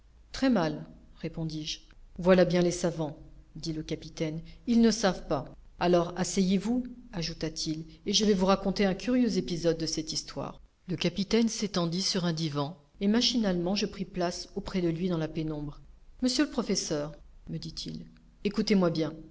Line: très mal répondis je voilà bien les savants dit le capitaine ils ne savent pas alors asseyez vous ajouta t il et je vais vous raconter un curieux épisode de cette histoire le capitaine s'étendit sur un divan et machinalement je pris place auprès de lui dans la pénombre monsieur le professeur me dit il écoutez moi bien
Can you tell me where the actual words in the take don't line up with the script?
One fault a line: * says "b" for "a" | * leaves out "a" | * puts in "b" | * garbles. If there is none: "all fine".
all fine